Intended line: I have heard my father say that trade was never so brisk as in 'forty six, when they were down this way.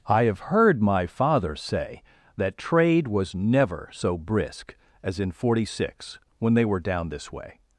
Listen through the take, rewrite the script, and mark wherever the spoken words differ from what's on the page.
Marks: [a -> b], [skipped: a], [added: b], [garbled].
I have heard my father say that trade was never so brisk as in 'forty six, when they were down this way.